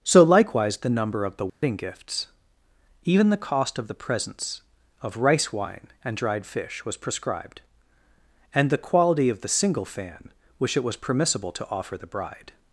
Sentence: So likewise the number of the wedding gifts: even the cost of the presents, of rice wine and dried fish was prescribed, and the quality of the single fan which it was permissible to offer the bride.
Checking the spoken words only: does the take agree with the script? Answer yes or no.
yes